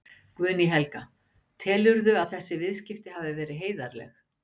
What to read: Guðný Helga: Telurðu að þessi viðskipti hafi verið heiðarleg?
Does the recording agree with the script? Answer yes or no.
yes